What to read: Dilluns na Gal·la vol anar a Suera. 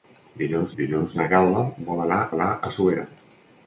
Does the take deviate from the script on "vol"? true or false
false